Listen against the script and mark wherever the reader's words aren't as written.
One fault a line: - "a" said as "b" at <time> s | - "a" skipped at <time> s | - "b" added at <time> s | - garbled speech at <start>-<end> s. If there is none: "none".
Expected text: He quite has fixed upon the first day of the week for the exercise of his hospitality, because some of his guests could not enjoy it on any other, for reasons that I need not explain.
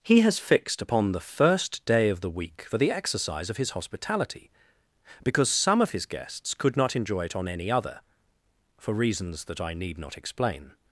- "quite" skipped at 0.2 s